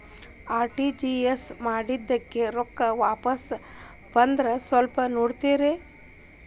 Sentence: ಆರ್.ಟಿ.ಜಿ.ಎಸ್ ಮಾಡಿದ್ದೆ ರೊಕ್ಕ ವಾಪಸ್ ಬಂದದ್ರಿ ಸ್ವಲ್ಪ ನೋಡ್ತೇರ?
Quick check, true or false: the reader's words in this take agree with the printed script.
true